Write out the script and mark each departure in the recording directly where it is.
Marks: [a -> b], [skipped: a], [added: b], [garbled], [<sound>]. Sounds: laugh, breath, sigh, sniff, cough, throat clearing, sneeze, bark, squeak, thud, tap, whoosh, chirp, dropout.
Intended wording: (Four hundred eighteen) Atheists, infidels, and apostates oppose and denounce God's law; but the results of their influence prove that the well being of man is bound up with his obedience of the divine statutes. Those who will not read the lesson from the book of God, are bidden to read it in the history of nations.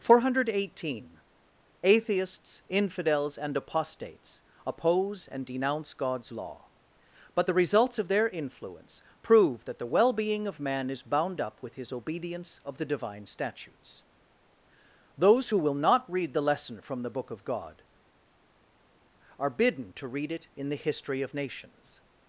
(Four hundred eighteen) Atheists, infidels, and apostates oppose and denounce God's law; but the results of their influence prove that the well being of man is bound up with his obedience of the divine statutes. Those who will not read the lesson from the book of God, are bidden to read it in the history of nations.